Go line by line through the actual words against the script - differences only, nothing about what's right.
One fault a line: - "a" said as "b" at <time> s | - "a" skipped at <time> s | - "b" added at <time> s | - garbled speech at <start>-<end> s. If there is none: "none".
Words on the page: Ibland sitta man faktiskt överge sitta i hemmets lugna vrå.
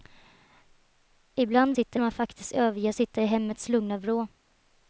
none